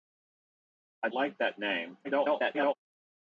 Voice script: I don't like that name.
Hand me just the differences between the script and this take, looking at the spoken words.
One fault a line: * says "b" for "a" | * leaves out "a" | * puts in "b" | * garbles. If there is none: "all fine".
* leaves out "don't"
* garbles